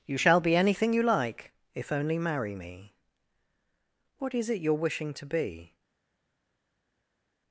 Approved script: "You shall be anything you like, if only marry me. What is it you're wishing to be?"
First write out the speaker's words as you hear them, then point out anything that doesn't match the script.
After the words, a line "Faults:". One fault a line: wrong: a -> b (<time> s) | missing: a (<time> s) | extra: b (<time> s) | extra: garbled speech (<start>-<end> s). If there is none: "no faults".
"You shall be anything you like, if only marry me. What is it you're wishing to be?"
Faults:
no faults